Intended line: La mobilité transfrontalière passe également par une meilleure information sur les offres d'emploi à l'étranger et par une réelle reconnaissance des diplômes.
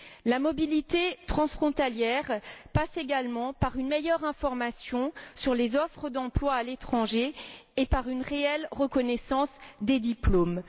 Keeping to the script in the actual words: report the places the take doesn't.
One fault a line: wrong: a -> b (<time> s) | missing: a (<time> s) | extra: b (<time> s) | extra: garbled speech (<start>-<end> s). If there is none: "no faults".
no faults